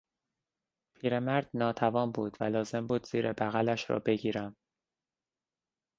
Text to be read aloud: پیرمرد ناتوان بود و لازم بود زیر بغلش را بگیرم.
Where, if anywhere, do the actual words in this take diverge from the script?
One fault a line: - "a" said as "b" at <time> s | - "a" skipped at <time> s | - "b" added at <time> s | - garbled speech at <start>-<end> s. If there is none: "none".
none